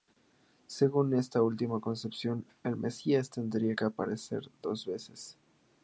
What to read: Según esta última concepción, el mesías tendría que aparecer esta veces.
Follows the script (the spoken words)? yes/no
no